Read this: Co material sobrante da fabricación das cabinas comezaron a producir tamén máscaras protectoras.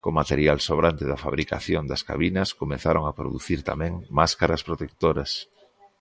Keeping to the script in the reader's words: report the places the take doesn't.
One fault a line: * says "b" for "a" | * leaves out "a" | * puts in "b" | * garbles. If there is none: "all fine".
all fine